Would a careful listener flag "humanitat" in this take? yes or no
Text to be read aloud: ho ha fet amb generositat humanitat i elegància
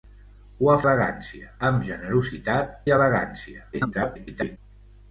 yes